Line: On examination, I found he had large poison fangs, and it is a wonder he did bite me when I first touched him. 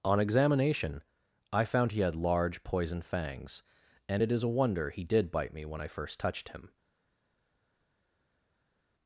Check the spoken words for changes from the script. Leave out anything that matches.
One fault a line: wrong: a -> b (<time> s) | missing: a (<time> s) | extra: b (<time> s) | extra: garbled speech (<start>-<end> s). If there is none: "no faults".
no faults